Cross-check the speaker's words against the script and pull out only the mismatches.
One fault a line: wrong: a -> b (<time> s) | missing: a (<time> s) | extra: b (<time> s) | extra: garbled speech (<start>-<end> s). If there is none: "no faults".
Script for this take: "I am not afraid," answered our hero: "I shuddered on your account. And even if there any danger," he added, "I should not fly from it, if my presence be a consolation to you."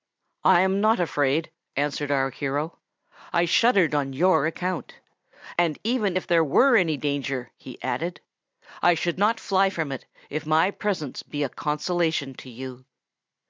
extra: were (6.4 s)